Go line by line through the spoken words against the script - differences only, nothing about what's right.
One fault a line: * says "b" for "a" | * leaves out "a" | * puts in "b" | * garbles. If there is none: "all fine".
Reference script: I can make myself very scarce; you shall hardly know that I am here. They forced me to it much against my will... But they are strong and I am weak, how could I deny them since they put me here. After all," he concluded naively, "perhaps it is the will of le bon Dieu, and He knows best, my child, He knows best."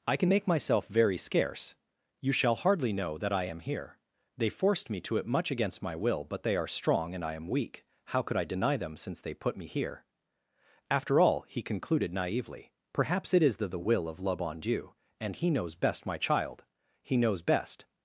* puts in "the"